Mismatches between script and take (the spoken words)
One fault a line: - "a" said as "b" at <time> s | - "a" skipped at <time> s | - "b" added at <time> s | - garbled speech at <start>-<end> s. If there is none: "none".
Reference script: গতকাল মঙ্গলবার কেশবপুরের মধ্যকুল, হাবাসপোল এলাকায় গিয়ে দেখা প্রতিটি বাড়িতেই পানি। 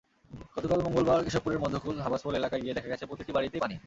- "গেছে" added at 2.9 s